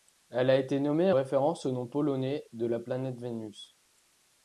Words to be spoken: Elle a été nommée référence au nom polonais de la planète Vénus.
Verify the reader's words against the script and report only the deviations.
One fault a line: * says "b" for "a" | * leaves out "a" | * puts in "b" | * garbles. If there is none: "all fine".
all fine